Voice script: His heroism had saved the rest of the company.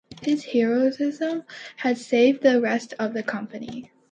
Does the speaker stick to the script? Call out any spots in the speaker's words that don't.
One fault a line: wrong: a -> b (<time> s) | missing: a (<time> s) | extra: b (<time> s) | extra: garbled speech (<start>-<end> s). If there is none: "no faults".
no faults